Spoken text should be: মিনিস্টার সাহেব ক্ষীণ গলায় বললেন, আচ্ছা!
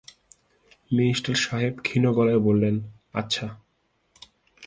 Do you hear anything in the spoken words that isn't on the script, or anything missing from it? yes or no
no